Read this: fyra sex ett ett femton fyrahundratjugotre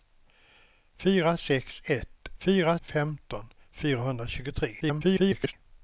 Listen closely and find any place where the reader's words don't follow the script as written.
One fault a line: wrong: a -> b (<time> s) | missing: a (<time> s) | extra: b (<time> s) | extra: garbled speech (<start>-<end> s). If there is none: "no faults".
wrong: ett -> fyra (2.4 s)
extra: garbled speech (4.8-5.5 s)